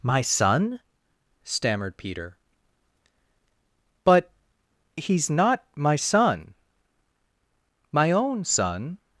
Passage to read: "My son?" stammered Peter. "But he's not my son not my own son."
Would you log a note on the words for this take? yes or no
yes